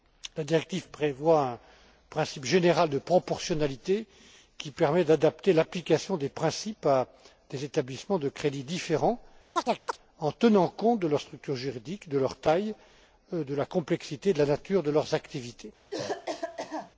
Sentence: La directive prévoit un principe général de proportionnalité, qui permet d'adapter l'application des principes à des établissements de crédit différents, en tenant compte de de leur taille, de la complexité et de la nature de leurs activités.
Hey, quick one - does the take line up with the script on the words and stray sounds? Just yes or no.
no